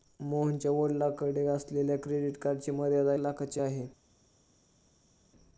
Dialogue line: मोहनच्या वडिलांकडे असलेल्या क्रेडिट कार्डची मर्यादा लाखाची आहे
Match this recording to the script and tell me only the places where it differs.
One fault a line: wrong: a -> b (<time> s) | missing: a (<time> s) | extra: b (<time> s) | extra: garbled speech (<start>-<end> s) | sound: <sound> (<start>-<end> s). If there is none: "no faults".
no faults